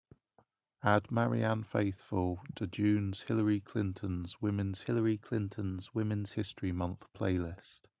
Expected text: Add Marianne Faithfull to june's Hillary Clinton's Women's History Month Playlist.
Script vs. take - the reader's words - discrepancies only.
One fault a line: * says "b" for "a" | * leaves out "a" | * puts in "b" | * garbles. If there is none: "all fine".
* puts in "Hillary Clinton's Women's"